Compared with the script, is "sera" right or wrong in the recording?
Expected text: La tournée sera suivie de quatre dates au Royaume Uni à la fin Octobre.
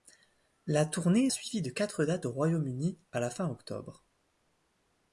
wrong